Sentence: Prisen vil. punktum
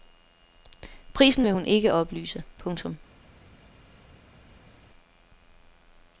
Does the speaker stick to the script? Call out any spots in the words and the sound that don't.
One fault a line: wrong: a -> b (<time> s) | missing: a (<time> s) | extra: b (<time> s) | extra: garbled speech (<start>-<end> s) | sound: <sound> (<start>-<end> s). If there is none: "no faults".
extra: hun ikke oplyse (1.5 s)